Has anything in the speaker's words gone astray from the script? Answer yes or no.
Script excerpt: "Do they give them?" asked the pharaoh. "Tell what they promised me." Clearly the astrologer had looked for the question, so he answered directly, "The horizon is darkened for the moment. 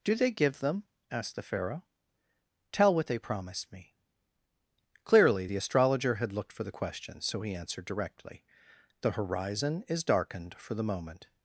no